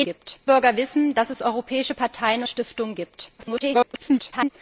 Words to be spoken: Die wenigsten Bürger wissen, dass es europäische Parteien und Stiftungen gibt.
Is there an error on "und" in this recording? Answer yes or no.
yes